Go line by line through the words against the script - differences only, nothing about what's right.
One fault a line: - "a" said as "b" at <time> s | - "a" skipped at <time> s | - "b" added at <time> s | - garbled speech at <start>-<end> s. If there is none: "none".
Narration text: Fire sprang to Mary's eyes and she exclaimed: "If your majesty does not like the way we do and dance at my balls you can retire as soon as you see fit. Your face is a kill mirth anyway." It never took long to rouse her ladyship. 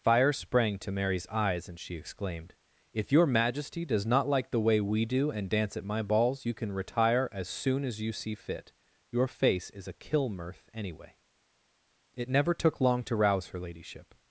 none